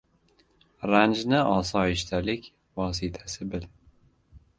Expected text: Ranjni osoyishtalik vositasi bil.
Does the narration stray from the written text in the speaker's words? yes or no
no